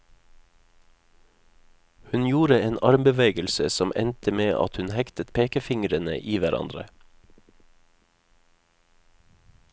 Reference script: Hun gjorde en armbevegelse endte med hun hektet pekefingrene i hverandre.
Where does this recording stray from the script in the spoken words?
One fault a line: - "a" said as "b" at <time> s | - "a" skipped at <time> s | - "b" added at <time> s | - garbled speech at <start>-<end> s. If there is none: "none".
- "som" added at 3.7 s
- "at" added at 4.6 s